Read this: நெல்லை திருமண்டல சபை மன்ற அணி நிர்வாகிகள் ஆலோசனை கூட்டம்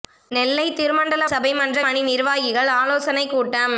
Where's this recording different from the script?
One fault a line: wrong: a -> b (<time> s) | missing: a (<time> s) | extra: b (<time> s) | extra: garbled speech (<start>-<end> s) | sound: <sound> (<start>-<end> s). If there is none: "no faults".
no faults